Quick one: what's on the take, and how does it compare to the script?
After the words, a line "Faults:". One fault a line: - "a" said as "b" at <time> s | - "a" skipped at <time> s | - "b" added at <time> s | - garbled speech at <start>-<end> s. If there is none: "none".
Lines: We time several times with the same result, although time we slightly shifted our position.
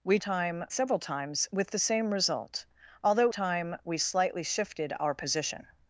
We time several times with the same result, although time we slightly shifted our position.
Faults:
none